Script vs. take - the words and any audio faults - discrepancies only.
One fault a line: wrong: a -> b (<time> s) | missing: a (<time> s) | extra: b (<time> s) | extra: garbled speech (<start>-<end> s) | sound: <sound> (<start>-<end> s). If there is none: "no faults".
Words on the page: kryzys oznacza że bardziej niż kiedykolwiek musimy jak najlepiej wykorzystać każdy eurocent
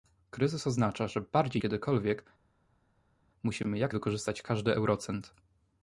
missing: niż (1.6 s)
missing: najlepiej (3.9 s)